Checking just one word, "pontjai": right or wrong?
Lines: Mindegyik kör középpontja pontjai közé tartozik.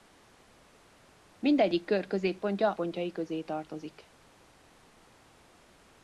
right